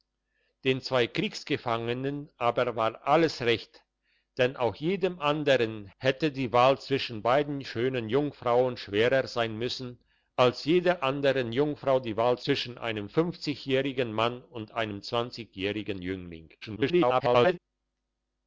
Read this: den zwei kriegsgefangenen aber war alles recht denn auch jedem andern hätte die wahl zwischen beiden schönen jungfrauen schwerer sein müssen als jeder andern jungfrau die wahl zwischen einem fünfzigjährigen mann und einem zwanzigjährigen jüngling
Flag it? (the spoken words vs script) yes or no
yes